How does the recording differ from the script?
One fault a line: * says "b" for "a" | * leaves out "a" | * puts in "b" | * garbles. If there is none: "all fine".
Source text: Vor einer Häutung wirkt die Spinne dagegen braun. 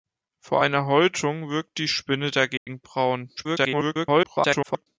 * garbles